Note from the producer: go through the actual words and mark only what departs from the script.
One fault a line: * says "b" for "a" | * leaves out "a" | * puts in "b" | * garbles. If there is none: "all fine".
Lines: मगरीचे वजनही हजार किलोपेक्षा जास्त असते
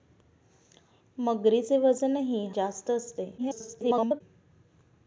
* leaves out "हजार किलोपेक्षा"
* garbles